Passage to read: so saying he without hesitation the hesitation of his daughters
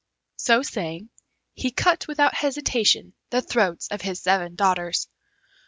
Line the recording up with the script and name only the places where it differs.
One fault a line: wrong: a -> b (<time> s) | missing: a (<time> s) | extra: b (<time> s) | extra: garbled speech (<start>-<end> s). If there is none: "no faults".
extra: cut (1.7 s)
wrong: hesitation -> throats (3.4 s)
extra: seven (4.2 s)